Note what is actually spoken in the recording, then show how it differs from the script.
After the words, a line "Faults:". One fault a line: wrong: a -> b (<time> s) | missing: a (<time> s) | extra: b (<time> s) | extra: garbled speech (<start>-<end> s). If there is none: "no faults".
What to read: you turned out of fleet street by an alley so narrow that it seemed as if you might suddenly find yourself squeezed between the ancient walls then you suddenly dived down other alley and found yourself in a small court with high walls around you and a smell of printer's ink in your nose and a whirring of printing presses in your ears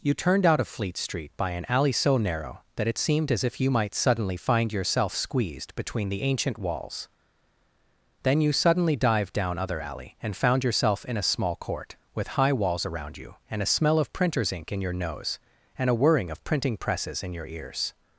you turned out of fleet street by an alley so narrow that it seemed as if you might suddenly find yourself squeezed between the ancient walls then you suddenly dived down other alley and found yourself in a small court with high walls around you and a smell of printer's ink in your nose and a whirring of printing presses in your ears
Faults:
no faults